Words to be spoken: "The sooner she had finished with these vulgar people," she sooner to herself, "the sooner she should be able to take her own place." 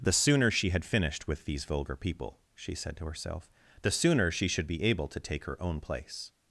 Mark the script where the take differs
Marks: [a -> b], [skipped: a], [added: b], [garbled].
"The sooner she had finished with these vulgar people," she [sooner -> said] to herself, "the sooner she should be able to take her own place."